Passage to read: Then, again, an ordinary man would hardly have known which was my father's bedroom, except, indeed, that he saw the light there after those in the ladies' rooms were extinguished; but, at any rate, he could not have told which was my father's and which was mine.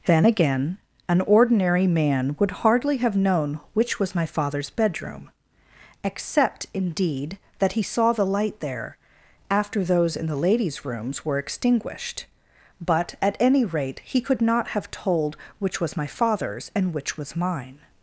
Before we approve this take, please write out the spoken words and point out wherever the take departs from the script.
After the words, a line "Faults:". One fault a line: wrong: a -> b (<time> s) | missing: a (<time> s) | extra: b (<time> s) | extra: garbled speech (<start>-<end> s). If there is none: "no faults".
Then, again, an ordinary man would hardly have known which was my father's bedroom, except, indeed, that he saw the light there after those in the ladies' rooms were extinguished; but, at any rate, he could not have told which was my father's and which was mine.
Faults:
no faults